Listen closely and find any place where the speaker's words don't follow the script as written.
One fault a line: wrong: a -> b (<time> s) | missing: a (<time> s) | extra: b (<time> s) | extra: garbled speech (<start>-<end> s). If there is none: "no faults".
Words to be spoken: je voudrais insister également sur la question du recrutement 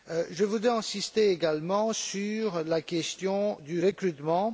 no faults